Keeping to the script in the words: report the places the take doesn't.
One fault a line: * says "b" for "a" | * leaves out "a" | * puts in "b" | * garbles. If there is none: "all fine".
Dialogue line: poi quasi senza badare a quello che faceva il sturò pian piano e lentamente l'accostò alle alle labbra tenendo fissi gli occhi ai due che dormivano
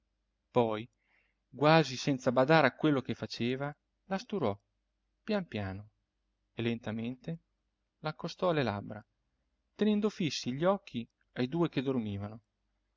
* says "la" for "il"
* leaves out "alle"